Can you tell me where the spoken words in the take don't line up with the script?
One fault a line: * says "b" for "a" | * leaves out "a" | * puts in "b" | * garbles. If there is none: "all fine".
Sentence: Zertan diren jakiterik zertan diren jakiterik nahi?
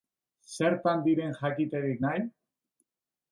* leaves out "zertan diren jakiterik"